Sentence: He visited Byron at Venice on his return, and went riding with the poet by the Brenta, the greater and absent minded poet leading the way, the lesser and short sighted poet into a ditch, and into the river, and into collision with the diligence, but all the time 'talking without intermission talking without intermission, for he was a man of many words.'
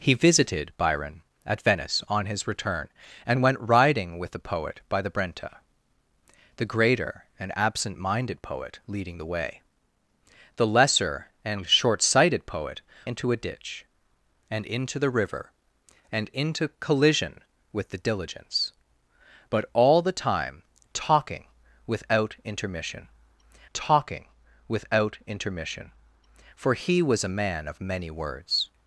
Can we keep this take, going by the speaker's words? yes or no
yes